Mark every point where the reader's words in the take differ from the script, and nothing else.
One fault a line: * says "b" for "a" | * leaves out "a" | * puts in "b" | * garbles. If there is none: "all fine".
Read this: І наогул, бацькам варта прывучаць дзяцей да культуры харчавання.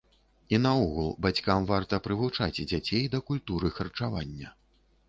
all fine